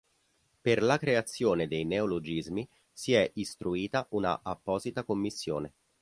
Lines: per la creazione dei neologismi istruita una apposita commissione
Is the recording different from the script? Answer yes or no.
yes